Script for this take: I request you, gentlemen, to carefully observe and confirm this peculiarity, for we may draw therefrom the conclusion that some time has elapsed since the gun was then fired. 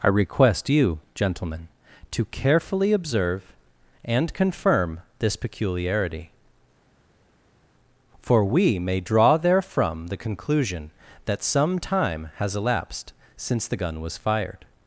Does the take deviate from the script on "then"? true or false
true